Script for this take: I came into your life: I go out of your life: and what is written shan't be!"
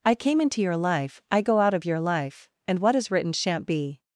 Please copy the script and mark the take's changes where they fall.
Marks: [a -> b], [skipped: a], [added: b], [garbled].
I came into your life: I go out of your life: and what is written shan't be!"